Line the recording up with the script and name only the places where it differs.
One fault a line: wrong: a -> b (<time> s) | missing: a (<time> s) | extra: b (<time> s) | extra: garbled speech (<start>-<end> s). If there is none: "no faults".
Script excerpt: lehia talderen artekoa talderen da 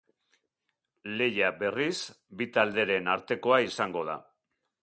extra: berriz bi (1.6 s)
wrong: talderen -> izango (3.7 s)